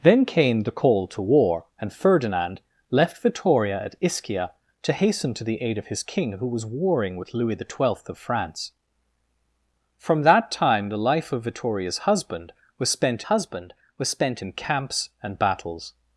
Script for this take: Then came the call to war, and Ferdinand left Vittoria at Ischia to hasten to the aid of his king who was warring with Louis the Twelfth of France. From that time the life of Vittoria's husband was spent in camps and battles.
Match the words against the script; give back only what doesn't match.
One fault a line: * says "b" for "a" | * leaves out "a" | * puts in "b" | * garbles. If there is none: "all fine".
* puts in "husband was spent"